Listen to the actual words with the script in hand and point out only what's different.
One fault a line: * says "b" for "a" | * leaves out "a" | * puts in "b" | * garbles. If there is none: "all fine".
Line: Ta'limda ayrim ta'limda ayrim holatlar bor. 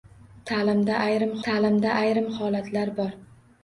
all fine